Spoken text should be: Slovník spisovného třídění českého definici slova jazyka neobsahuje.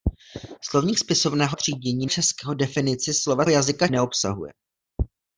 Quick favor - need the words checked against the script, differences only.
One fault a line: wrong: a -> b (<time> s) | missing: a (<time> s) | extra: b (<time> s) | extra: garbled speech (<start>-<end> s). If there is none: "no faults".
no faults